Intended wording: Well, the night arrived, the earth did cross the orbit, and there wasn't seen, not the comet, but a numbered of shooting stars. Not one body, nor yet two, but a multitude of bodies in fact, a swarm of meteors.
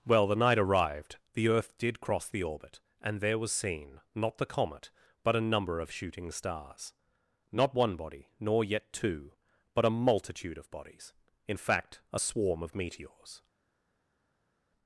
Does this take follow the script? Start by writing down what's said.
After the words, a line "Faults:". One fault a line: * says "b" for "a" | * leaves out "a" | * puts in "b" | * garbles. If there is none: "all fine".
Well, the night arrived, the earth did cross the orbit, and there was seen, not the comet, but a number of shooting stars. Not one body, nor yet two, but a multitude of bodies in fact, a swarm of meteors.
Faults:
* says "was" for "wasn't"
* says "number" for "numbered"